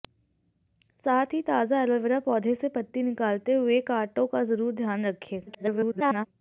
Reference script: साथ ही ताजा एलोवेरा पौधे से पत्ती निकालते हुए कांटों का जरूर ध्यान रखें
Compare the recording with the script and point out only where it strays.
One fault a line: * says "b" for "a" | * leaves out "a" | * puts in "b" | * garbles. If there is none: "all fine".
* garbles